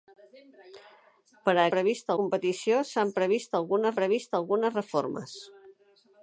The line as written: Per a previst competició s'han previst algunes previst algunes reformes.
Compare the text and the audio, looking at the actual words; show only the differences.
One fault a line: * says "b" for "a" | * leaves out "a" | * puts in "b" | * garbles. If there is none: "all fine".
all fine